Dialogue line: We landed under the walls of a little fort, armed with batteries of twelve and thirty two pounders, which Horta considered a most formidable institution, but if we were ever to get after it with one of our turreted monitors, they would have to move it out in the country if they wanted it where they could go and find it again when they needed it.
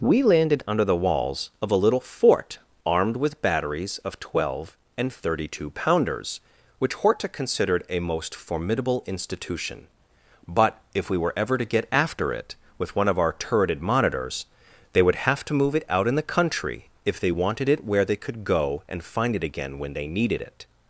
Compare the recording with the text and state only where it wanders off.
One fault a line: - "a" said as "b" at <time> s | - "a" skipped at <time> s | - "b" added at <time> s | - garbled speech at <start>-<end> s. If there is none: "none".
none